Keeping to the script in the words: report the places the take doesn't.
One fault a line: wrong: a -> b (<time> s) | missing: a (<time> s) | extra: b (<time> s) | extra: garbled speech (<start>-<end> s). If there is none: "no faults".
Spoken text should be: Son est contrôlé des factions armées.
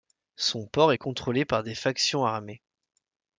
extra: port (0.7 s)
extra: par (1.4 s)